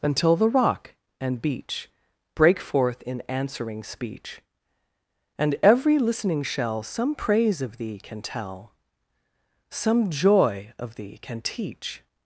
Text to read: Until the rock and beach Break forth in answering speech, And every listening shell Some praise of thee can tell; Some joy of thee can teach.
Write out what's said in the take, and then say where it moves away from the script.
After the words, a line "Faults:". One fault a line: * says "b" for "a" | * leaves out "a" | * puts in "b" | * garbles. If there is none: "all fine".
Until the rock and beach Break forth in answering speech, And every listening shell Some praise of thee can tell; Some joy of thee can teach.
Faults:
all fine